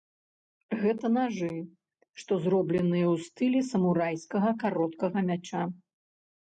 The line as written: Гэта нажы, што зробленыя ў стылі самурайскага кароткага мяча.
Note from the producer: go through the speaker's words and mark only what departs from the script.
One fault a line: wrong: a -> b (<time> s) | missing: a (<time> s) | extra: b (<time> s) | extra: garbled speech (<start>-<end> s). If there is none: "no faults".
no faults